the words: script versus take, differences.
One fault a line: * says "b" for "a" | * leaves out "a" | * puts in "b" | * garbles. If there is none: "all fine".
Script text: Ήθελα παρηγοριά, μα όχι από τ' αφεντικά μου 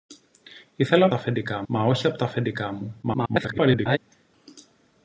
* says "αφεντικά" for "παρηγοριά"
* garbles